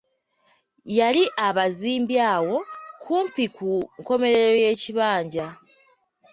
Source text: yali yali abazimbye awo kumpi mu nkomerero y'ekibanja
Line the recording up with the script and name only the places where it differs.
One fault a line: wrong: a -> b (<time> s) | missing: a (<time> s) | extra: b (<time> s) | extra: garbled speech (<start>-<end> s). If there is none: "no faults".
missing: yali (1.2 s)
wrong: mu -> ku (3.5 s)